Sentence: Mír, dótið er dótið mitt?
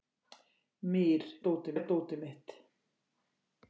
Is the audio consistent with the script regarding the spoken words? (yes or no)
yes